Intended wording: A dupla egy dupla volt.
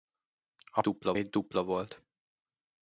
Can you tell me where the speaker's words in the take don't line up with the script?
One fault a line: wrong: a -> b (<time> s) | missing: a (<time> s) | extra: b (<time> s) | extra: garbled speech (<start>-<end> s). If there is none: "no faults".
no faults